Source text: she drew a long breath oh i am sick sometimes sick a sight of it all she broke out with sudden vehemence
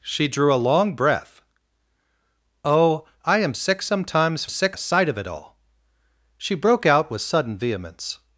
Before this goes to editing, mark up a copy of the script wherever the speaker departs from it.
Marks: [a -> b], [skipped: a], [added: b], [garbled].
she drew a long breath oh i am sick sometimes sick a sight of it all she broke out with sudden vehemence